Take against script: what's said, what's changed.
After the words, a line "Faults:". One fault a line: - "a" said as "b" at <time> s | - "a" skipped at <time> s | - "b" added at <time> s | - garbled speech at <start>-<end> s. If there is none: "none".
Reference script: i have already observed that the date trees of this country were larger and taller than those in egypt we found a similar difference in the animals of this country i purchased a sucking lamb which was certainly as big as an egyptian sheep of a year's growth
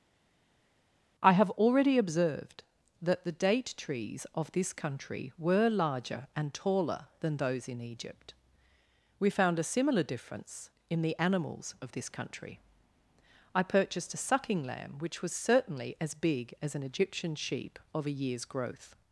i have already observed that the date trees of this country were larger and taller than those in egypt we found a similar difference in the animals of this country i purchased a sucking lamb which was certainly as big as an egyptian sheep of a year's growth
Faults:
none